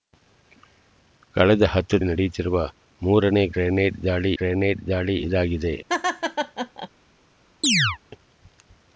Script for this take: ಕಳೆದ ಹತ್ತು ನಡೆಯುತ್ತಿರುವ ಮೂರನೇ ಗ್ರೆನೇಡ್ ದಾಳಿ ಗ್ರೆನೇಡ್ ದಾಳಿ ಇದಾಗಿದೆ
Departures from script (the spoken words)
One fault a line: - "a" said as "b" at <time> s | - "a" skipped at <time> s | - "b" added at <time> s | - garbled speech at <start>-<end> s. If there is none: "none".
none